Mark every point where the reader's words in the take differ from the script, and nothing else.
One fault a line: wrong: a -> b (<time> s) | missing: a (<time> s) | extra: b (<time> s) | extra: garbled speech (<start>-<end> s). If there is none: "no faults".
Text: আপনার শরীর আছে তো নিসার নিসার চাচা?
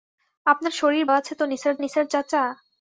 no faults